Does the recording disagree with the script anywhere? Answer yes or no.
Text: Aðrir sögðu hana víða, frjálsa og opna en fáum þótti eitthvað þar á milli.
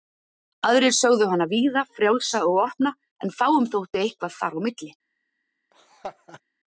no